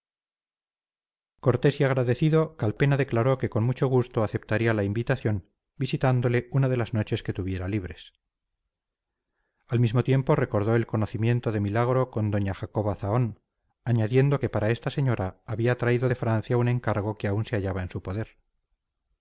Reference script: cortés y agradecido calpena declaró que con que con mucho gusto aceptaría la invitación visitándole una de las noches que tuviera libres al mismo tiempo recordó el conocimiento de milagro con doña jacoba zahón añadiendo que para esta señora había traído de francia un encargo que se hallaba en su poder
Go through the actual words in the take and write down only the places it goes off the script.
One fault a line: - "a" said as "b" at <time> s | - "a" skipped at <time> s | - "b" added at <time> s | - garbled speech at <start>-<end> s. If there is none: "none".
- "que con" skipped at 3.6 s
- "aún" added at 17.3 s